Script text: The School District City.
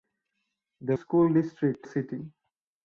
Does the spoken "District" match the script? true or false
true